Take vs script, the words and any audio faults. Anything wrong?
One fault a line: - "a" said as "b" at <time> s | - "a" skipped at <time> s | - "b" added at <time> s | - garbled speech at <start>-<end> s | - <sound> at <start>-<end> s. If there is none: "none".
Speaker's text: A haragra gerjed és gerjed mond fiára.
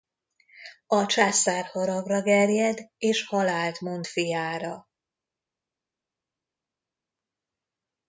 - "császár" added at 1.0 s
- "gerjed" said as "halált" at 3.2 s